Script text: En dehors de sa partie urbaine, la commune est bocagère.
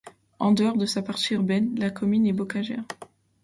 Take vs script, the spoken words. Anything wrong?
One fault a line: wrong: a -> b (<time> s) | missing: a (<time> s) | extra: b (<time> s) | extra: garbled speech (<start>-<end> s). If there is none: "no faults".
no faults